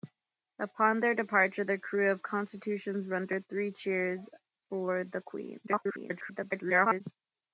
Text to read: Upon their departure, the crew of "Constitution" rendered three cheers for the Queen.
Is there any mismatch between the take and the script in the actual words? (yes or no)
yes